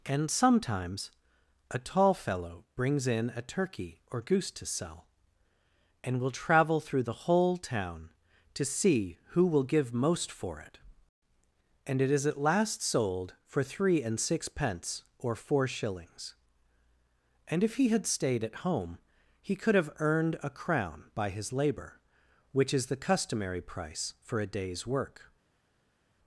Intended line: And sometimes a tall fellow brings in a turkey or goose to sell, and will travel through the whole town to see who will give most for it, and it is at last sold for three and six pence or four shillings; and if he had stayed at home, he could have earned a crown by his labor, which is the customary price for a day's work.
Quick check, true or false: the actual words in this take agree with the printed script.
true